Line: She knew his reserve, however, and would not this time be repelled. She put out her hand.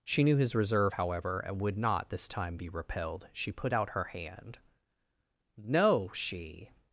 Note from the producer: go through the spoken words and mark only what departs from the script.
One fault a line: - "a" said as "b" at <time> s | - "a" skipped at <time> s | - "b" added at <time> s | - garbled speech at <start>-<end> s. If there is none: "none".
- "No she" added at 5.6 s